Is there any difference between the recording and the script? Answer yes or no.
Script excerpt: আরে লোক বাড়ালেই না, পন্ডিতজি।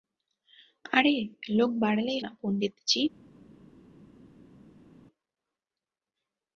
no